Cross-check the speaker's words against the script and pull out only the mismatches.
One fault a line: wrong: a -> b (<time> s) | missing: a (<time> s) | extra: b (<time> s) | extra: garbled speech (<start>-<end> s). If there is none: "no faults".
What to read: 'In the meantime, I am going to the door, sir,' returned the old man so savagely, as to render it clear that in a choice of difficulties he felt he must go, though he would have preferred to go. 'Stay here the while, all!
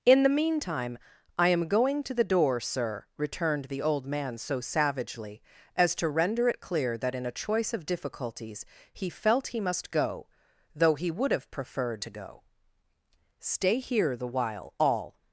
no faults